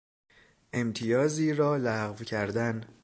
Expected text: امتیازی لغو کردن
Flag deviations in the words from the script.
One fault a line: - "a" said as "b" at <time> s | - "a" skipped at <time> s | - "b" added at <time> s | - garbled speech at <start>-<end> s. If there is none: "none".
- "را" added at 1.5 s